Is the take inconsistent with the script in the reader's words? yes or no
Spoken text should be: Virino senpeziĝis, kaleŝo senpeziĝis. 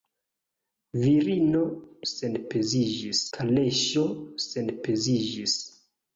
no